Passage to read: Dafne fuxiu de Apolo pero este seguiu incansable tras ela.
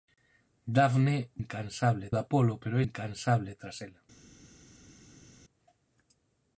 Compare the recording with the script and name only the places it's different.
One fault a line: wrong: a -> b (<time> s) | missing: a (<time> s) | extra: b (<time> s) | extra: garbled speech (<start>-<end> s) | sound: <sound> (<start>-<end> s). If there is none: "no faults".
wrong: fuxiu -> incansable (1.4 s)
missing: este seguiu (2.8 s)